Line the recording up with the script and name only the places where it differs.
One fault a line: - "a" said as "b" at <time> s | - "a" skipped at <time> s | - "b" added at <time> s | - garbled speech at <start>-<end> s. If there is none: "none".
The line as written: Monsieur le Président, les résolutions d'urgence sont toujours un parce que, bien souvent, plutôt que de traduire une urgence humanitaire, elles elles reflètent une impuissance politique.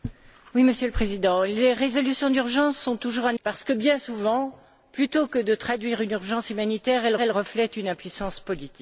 none